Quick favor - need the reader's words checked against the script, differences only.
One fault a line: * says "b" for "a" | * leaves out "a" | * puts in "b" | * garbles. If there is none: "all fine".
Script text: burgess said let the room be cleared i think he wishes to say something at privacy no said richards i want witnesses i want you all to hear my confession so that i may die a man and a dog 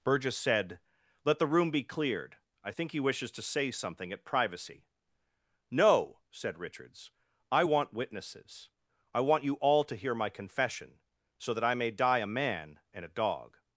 all fine